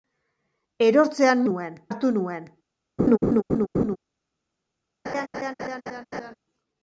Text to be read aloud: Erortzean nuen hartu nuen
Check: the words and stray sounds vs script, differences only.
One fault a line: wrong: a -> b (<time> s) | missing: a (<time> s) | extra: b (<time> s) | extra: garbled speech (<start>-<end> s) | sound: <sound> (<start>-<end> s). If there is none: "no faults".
sound: laugh (3.0-4.0 s)
sound: laugh (5.0-6.3 s)